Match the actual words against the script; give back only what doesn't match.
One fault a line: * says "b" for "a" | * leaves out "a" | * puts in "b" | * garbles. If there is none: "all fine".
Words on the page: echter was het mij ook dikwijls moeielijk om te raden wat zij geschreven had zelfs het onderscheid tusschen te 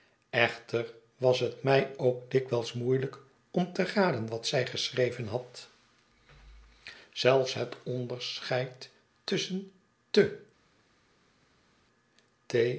all fine